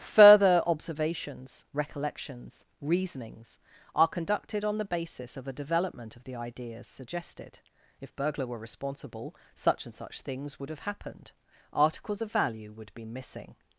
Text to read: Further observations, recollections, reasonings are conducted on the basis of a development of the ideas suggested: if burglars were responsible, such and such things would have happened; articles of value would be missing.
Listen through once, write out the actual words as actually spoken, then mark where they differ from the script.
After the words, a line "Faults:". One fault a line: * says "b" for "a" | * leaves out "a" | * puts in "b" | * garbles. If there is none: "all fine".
Further observations, recollections, reasonings are conducted on the basis of a development of the ideas suggested: if burglar were responsible, such and such things would have happened; articles of value would be missing.
Faults:
* says "burglar" for "burglars"